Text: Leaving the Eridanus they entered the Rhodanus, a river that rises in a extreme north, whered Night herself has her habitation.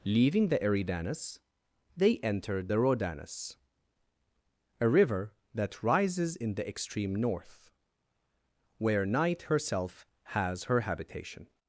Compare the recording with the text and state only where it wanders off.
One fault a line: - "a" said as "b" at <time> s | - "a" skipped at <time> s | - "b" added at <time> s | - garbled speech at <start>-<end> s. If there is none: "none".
- "a" said as "the" at 6.5 s
- "whered" said as "where" at 8.8 s